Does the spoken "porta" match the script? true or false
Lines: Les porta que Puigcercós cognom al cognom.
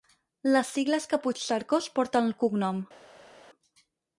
false